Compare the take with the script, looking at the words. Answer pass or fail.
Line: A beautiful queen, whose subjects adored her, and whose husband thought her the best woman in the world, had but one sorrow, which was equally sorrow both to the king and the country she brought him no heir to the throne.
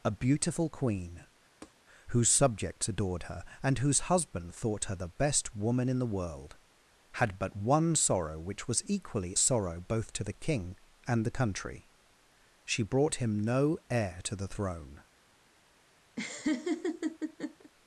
pass